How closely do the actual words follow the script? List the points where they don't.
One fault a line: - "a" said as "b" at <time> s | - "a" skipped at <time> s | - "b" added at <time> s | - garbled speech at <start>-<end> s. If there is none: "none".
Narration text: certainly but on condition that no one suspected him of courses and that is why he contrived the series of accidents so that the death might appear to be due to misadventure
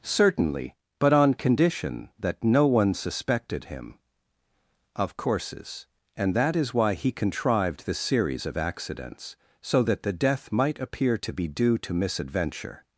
none